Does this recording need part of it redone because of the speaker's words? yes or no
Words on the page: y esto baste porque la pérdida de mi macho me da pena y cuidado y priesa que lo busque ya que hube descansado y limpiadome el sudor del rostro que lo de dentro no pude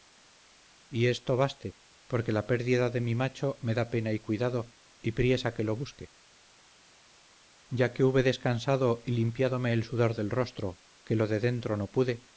no